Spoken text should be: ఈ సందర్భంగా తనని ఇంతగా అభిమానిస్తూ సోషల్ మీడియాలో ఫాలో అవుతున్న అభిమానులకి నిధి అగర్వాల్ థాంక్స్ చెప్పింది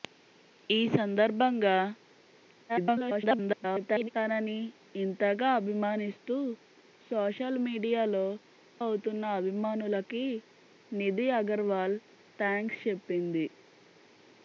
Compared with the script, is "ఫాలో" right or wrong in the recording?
wrong